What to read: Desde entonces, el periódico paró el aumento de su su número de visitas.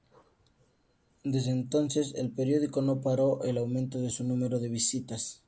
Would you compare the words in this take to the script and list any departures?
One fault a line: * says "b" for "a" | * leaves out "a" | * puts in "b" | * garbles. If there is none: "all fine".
* puts in "no"
* leaves out "su"